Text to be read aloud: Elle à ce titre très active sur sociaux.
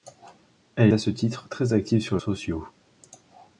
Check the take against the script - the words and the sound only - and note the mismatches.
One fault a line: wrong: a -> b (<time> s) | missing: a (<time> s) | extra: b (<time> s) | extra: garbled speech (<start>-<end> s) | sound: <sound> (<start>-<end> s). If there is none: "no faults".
no faults